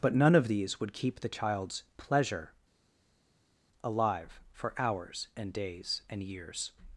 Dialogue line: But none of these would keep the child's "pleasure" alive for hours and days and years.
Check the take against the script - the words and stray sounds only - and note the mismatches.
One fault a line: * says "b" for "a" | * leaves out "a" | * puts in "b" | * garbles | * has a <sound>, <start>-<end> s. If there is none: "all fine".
all fine